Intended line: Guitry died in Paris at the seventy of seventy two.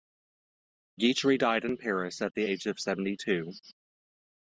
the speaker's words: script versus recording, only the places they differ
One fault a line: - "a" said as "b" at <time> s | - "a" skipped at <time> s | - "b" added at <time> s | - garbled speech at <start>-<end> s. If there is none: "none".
- "seventy" said as "age" at 2.4 s